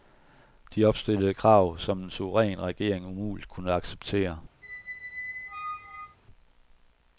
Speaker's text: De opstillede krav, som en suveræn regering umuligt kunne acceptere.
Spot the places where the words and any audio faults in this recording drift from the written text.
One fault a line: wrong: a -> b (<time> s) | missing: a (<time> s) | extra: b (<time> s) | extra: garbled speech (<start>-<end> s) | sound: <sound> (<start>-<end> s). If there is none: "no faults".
sound: squeak (4.6-6.2 s)